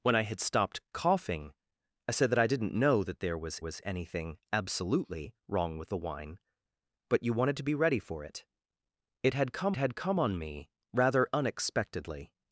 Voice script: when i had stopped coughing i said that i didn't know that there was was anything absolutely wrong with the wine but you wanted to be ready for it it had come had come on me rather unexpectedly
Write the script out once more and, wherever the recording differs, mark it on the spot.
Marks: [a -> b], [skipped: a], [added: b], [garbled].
when i had stopped coughing i said that i didn't know that there was was anything absolutely wrong with the wine but you wanted to be ready for it it had come had come on me rather unexpectedly